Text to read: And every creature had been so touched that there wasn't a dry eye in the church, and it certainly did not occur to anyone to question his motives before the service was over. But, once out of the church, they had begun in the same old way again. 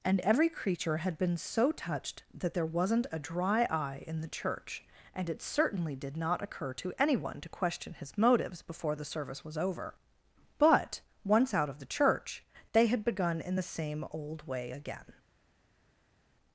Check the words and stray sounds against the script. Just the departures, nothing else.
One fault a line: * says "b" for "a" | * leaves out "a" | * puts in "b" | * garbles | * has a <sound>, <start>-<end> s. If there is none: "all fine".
all fine